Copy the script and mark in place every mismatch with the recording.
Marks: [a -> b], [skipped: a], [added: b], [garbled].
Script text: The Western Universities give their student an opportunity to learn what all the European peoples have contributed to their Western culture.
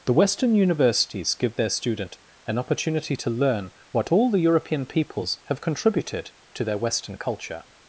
The Western Universities give their student an opportunity to learn what all the European peoples have contributed to their Western culture.